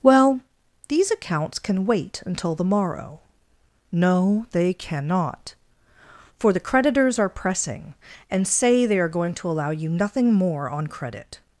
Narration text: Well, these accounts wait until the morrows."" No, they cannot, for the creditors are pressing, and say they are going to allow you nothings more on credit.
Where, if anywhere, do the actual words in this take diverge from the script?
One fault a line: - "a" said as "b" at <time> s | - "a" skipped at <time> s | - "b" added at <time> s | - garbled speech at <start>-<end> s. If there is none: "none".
- "can" added at 1.6 s
- "morrows" said as "morrow" at 2.6 s
- "nothings" said as "nothing" at 9.9 s